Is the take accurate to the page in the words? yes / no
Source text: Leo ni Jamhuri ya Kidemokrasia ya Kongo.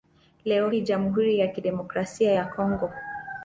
yes